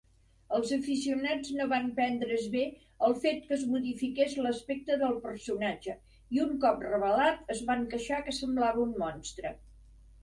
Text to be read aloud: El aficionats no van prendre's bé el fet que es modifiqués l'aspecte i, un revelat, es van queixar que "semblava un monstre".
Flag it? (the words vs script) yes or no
yes